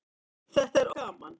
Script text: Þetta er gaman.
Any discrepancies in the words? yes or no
no